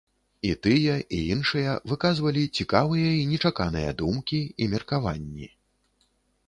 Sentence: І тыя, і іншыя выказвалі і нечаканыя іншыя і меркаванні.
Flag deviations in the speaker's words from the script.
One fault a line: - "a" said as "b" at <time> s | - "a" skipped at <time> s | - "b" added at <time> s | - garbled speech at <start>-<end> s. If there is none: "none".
- "цікавыя" added at 2.6 s
- "іншыя" said as "думкі" at 4.0 s